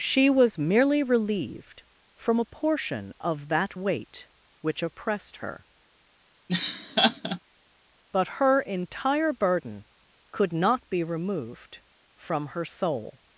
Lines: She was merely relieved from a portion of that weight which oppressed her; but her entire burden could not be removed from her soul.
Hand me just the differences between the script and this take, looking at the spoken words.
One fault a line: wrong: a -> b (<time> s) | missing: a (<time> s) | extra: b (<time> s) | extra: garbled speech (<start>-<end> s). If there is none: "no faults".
no faults